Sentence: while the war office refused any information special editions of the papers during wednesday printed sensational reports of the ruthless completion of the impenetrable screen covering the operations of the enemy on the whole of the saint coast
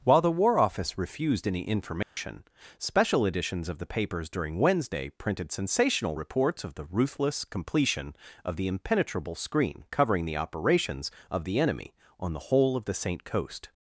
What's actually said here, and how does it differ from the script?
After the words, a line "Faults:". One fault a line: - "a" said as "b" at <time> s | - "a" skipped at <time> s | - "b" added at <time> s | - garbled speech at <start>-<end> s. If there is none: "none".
while the war office refused any information special editions of the papers during wednesday printed sensational reports of the ruthless completion of the impenetrable screen covering the operations of the enemy on the whole of the saint coast
Faults:
none